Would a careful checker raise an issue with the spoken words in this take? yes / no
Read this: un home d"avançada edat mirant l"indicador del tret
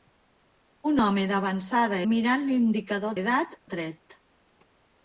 yes